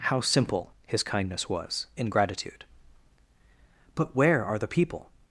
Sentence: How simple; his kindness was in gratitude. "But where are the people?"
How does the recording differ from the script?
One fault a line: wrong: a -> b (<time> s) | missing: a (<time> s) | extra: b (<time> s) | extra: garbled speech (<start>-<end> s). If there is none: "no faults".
no faults